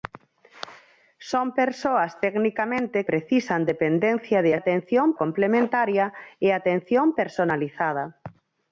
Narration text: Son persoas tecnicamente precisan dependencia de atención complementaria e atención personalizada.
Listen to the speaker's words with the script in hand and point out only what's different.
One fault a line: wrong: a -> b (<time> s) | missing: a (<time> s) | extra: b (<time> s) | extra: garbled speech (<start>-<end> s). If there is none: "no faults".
no faults